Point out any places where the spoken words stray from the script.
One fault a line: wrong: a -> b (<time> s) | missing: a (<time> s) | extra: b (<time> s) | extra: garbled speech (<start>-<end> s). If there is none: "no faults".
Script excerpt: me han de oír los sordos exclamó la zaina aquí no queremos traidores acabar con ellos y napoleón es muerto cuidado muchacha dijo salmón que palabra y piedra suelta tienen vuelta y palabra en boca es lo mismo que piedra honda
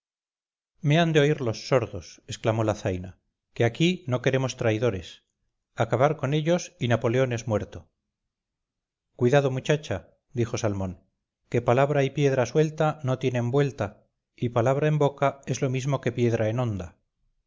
extra: que (3.5 s)
extra: no (13.0 s)
extra: en (16.5 s)